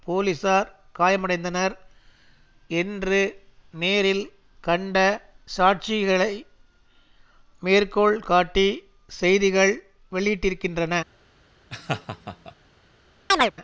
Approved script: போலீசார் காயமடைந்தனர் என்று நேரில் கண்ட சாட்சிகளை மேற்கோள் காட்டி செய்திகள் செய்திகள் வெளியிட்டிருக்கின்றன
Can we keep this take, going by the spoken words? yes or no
no